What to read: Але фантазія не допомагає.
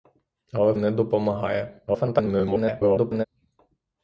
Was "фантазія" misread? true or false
true